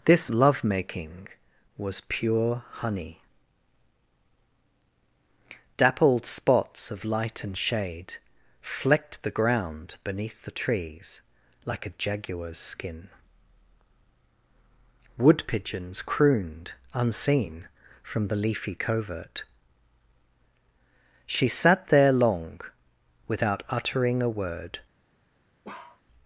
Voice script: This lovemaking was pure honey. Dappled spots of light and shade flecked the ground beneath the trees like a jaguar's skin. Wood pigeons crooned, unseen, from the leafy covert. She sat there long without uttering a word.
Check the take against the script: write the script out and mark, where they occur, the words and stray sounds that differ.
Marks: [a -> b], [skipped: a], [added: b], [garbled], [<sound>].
This lovemaking was pure honey. Dappled spots of light and shade flecked the ground beneath the trees like a jaguar's skin. Wood pigeons crooned, unseen, from the leafy covert. She sat there long without uttering a word. [bark]